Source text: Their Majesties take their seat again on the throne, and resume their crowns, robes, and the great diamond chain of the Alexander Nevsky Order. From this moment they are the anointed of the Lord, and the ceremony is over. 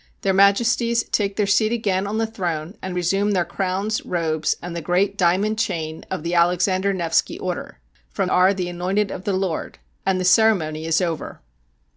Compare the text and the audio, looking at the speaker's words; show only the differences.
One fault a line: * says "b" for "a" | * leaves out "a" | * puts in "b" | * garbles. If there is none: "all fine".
* leaves out "this moment they"